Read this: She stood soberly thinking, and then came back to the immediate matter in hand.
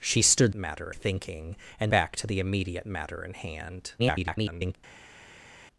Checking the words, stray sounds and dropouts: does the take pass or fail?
fail